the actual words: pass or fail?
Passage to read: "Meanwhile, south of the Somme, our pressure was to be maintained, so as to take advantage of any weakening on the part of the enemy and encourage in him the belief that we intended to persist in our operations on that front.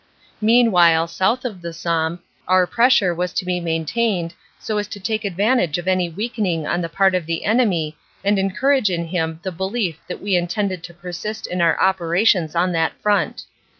pass